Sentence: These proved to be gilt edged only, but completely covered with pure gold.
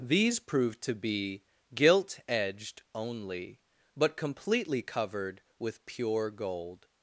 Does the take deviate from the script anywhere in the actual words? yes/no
no